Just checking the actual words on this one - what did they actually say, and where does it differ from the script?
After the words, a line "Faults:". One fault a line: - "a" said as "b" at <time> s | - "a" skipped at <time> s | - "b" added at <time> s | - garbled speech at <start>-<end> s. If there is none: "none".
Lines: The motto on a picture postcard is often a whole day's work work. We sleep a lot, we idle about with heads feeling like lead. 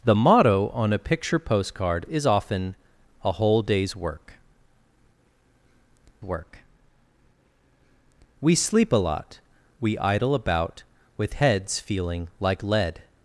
The motto on a picture postcard is often a whole day's work work. We sleep a lot, we idle about with heads feeling like lead.
Faults:
none